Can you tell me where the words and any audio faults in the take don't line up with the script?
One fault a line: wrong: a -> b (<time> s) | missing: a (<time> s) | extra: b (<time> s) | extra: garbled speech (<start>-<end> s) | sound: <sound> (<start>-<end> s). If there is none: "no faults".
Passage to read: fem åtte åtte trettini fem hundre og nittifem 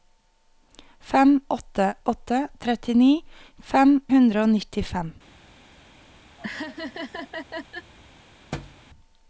sound: laugh (6.4-7.9 s)
sound: thud (8.5-8.8 s)